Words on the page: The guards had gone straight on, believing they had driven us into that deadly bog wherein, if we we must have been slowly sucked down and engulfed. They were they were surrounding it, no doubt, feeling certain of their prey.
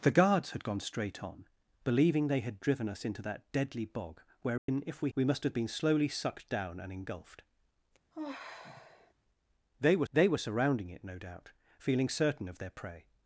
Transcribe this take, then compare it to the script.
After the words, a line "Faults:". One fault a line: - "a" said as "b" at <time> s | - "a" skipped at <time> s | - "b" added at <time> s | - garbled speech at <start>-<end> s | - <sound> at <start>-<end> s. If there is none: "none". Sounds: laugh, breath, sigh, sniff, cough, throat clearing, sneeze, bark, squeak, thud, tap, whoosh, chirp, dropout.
The guards had gone straight on, believing they had driven us into that deadly bog wherein, if we we must have been slowly sucked down and engulfed. They were they were surrounding it, no doubt, feeling certain of their prey.
Faults:
- dropout at 4.6-4.7 s
- sigh at 8.1-9.1 s